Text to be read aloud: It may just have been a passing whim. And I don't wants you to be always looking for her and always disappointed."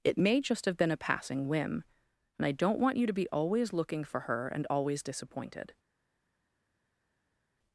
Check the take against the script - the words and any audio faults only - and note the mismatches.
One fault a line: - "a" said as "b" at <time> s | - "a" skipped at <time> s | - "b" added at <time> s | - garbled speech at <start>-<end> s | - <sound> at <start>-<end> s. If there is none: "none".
- "wants" said as "want" at 2.8 s